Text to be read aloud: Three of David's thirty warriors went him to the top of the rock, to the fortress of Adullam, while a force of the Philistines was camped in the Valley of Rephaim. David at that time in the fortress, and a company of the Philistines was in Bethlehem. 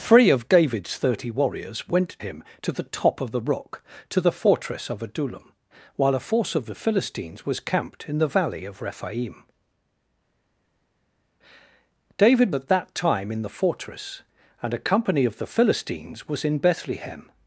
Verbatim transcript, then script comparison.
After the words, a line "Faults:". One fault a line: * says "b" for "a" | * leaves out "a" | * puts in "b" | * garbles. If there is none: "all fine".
Three of David's thirty warriors went him to the top of the rock, to the fortress of Adullam, while a force of the Philistines was camped in the Valley of Rephaim. David at that time in the fortress, and a company of the Philistines was in Bethlehem.
Faults:
all fine